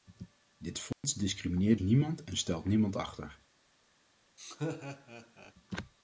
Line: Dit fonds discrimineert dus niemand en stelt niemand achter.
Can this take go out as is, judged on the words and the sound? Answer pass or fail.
fail